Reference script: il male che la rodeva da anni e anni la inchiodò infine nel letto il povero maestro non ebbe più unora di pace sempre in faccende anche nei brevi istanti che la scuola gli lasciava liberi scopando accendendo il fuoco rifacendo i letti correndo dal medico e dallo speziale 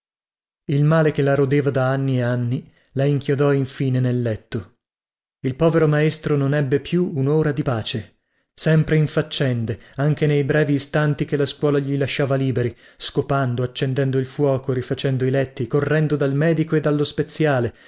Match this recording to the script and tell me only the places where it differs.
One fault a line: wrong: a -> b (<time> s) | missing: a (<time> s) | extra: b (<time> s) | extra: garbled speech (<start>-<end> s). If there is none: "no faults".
no faults